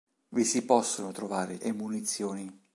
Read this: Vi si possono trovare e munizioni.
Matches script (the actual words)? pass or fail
pass